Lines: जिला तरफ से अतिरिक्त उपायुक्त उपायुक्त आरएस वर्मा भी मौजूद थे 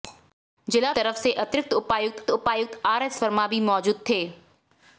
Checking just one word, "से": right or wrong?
right